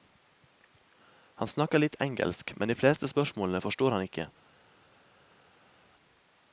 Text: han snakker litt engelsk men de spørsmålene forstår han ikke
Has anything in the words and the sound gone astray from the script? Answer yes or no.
yes